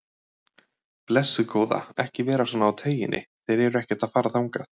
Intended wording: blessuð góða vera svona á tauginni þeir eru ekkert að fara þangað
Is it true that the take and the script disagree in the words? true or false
true